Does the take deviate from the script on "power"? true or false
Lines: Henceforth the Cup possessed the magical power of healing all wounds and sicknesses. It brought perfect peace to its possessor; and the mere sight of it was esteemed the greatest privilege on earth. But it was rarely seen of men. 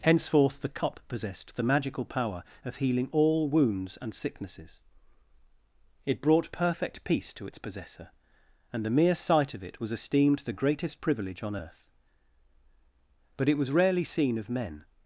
false